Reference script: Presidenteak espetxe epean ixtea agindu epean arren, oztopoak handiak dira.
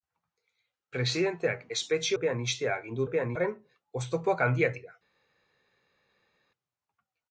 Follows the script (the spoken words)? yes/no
yes